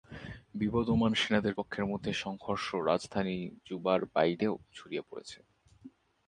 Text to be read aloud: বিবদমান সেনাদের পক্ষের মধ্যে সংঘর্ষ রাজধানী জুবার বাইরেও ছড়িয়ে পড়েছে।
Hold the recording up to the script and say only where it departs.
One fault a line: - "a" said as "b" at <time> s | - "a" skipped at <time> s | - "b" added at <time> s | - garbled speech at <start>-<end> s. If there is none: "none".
none